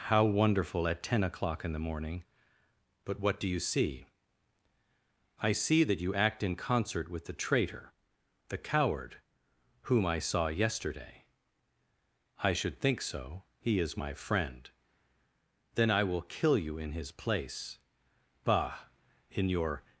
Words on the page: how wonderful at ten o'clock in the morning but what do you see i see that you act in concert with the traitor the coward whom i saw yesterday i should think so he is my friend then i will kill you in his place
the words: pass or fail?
fail